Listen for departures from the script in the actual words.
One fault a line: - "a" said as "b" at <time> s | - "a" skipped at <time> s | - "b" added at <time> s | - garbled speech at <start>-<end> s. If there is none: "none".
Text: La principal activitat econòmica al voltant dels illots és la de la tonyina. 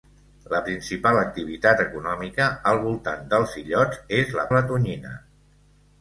none